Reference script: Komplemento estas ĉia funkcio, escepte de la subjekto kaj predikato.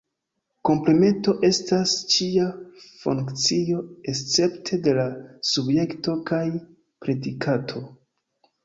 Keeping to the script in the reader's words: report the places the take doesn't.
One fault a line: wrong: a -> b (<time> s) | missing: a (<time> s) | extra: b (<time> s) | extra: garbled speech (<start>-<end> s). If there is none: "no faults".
no faults